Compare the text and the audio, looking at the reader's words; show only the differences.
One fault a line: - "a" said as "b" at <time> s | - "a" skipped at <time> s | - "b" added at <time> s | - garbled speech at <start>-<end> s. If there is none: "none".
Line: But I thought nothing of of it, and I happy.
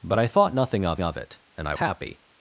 none